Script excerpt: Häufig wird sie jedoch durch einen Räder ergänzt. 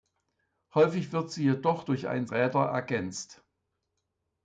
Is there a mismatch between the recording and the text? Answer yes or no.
no